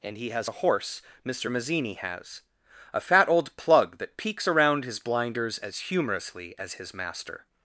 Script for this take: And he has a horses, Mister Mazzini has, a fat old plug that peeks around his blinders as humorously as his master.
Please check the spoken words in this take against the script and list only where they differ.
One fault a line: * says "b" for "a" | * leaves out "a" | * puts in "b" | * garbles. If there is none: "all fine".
* says "horse" for "horses"